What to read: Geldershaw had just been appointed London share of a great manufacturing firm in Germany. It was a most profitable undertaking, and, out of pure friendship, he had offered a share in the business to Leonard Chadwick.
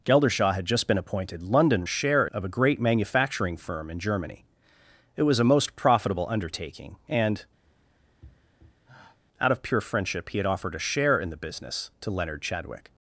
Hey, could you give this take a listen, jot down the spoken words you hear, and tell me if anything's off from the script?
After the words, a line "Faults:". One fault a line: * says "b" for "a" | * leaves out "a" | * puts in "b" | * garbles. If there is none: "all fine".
Geldershaw had just been appointed London share of a great manufacturing firm in Germany. It was a most profitable undertaking, and, out of pure friendship, he had offered a share in the business to Leonard Chadwick.
Faults:
all fine